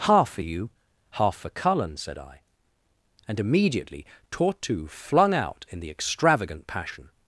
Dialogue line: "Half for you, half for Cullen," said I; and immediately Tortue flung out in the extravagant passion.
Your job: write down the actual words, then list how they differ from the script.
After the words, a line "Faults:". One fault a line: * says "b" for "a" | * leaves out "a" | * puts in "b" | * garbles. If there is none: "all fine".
"Half for you, half for Cullen," said I; and immediately Tortue flung out in the extravagant passion.
Faults:
all fine